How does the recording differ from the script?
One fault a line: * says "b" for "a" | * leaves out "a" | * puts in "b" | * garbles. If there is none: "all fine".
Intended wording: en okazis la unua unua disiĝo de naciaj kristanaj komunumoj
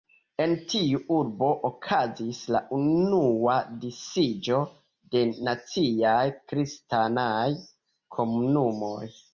* puts in "tiu urbo"
* leaves out "unua"